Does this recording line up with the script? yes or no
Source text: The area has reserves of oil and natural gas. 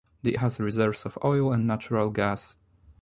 no